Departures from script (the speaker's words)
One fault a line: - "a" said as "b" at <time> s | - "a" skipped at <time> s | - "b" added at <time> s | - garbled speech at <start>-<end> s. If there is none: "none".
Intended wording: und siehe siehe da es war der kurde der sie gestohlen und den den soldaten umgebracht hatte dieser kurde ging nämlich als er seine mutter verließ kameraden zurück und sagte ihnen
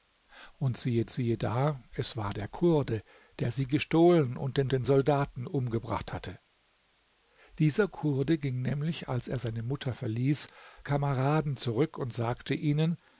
none